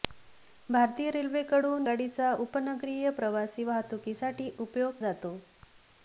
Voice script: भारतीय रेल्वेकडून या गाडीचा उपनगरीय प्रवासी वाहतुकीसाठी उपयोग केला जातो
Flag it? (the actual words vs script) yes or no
yes